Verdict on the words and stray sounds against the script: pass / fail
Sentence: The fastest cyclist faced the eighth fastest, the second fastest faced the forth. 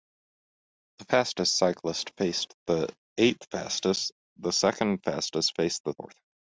pass